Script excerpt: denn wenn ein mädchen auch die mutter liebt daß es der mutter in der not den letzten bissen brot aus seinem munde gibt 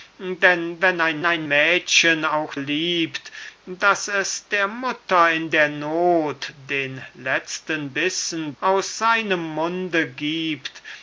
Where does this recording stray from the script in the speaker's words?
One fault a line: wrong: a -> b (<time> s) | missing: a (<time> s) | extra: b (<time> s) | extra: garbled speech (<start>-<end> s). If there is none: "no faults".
extra: ein (1.2 s)
missing: die mutter (2.5 s)
missing: brot (8.5 s)